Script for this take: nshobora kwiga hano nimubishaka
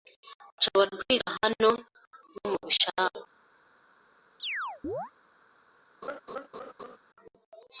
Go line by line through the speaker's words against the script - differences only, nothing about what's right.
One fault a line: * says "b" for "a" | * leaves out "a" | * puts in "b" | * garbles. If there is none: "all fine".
all fine